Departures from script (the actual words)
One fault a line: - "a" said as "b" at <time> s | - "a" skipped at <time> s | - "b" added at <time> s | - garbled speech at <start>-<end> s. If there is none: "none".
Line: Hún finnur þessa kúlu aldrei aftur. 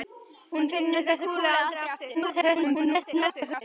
- garbled speech at 2.1-3.6 s